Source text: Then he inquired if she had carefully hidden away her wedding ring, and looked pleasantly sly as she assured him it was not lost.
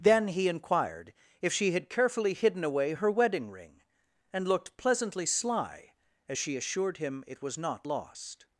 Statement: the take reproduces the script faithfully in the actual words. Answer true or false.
true